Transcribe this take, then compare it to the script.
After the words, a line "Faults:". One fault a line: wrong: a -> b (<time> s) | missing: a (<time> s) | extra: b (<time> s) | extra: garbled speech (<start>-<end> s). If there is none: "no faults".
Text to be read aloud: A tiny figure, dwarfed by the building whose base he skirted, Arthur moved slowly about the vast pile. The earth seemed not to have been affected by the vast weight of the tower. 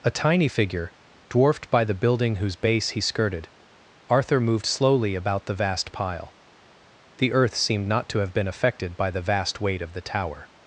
A tiny figure, dwarfed by the building whose base he skirted, Arthur moved slowly about the vast pile. The earth seemed not to have been affected by the vast weight of the tower.
Faults:
no faults